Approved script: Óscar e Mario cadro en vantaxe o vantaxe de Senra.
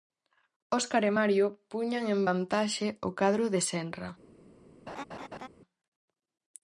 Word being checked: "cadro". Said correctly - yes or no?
no